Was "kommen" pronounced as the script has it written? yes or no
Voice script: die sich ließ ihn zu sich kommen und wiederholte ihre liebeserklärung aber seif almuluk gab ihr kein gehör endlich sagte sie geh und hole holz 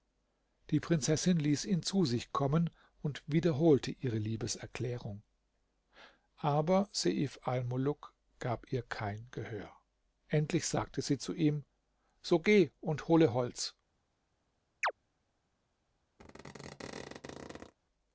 yes